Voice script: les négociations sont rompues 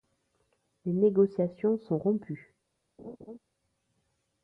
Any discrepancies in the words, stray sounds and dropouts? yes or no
yes